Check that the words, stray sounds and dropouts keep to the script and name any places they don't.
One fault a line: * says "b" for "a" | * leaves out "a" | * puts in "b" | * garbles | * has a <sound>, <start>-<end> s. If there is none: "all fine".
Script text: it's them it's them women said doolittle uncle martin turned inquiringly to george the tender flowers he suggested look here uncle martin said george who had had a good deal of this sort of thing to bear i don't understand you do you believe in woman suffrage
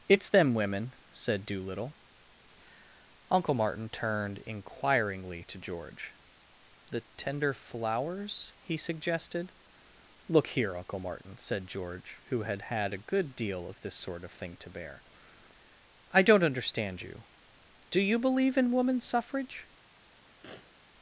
* leaves out "it's them"
* has a sniff, 20.4-20.8 s